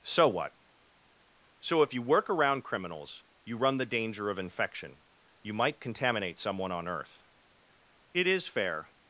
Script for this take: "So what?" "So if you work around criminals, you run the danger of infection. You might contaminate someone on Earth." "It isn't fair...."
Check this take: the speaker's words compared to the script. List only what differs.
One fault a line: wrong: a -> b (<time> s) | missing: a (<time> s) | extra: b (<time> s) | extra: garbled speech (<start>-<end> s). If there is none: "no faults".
wrong: isn't -> is (8.3 s)